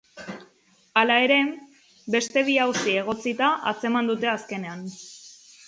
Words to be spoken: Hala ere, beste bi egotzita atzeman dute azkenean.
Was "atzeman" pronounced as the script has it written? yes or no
yes